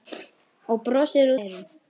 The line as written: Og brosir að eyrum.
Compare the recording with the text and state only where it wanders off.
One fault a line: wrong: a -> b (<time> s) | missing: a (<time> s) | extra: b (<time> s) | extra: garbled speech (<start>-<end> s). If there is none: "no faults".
no faults